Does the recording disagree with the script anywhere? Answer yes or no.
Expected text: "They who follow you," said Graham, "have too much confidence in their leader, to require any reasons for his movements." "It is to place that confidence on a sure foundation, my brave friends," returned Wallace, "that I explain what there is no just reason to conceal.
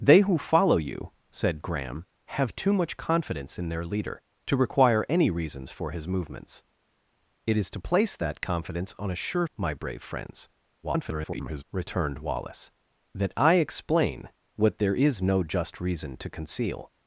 yes